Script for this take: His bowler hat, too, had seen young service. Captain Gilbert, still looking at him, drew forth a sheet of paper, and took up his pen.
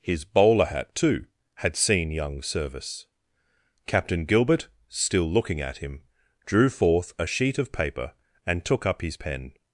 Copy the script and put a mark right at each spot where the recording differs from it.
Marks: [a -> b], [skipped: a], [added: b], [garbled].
His bowler hat, too, had seen young service. Captain Gilbert, still looking at him, drew forth a sheet of paper, and took up his pen.